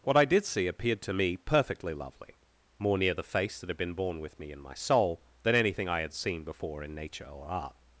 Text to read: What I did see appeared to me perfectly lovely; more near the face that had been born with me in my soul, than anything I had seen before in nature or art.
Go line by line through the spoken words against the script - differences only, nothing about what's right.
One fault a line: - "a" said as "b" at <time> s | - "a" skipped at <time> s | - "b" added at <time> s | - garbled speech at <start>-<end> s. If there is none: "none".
none